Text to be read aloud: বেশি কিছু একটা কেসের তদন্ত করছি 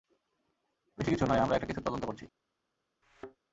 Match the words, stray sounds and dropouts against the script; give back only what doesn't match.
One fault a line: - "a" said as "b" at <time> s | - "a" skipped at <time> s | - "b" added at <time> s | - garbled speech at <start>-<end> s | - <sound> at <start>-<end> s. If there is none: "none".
- "নয় আমরা" added at 1.2 s
- thud at 3.0-3.4 s